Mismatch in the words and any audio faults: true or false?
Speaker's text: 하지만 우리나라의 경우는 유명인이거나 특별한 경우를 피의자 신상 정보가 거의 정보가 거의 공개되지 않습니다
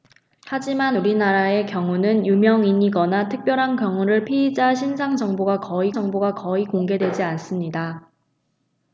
false